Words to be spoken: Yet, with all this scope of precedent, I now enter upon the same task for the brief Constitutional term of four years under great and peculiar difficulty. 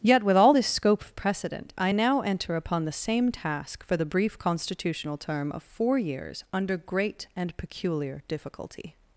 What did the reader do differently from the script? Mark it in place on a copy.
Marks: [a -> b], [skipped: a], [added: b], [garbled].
Yet, with all this scope of precedent, I now enter upon the same task for the brief Constitutional term of four years under great and peculiar difficulty.